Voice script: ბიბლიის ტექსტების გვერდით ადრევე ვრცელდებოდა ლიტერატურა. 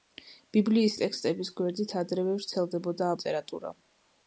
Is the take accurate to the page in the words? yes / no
yes